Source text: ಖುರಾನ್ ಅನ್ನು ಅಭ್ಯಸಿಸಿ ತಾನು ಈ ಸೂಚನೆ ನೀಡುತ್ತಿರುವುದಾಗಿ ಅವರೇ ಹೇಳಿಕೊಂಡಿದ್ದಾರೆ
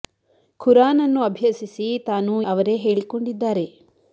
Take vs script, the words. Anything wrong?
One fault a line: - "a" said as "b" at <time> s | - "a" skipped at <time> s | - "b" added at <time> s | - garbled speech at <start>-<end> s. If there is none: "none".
- "ಈ ಸೂಚನೆ ನೀಡುತ್ತಿರುವುದಾಗಿ" skipped at 2.3 s